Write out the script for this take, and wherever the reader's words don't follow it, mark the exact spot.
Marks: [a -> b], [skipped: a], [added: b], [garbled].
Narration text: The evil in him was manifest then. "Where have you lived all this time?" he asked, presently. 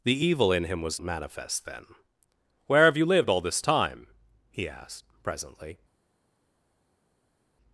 The evil in him was manifest then. "Where have you lived all this time?" he asked, presently.